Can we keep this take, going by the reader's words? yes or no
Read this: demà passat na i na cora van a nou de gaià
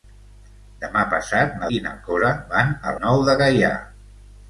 yes